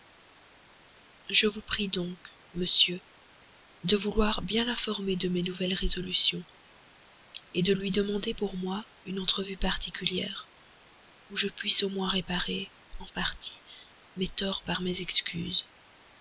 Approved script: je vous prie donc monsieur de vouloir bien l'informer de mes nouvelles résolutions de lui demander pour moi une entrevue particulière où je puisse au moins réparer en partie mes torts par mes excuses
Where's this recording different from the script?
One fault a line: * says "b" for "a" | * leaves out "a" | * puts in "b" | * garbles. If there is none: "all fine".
all fine